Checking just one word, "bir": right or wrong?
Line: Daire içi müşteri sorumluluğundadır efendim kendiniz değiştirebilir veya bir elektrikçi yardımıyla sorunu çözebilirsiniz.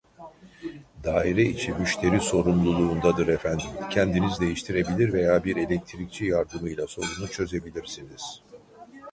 right